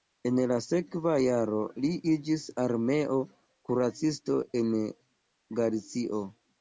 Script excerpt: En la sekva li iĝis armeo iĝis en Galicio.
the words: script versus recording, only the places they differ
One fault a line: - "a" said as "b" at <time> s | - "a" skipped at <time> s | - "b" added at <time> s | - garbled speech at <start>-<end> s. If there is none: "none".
- "jaro" added at 1.2 s
- "iĝis" said as "kuracisto" at 3.7 s